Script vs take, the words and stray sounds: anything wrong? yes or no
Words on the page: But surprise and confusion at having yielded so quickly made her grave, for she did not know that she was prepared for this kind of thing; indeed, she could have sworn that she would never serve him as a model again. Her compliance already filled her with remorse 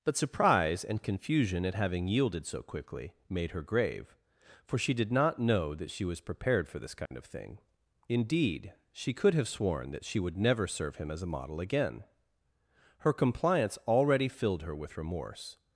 yes